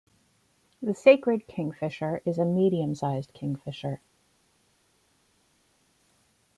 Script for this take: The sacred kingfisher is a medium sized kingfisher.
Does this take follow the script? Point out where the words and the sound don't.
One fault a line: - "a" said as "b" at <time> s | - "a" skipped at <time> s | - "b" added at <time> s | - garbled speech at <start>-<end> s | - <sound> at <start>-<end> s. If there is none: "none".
none